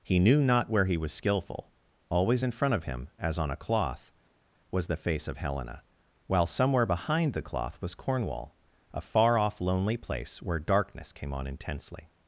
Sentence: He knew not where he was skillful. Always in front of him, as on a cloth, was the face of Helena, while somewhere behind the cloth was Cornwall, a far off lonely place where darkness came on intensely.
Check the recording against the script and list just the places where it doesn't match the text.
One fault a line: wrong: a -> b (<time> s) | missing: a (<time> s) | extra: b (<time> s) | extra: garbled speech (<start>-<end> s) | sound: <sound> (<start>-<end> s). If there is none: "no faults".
no faults